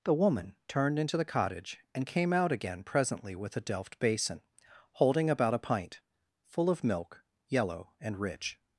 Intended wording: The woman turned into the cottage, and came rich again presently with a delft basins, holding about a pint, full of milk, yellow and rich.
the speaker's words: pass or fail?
fail